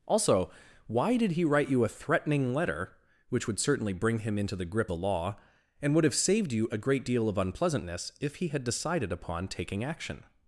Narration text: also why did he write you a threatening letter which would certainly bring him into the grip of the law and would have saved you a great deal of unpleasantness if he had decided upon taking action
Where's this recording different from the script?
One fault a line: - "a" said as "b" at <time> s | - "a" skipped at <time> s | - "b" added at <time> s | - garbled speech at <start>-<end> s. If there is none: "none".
- "of" skipped at 4.9 s